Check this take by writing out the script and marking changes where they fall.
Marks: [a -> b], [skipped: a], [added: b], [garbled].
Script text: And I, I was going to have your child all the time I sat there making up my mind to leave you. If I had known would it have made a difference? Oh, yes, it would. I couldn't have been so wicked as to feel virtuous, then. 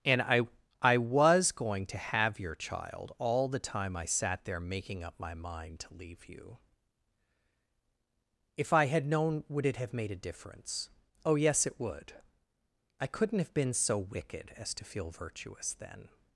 And I, I was going to have your child all the time I sat there making up my mind to leave you. If I had known would it have made a difference? Oh, yes, it would. I couldn't have been so wicked as to feel virtuous, then.